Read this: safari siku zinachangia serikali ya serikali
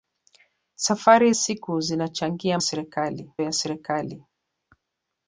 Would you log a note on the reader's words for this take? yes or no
no